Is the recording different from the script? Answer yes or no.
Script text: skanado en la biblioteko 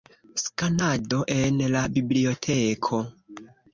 no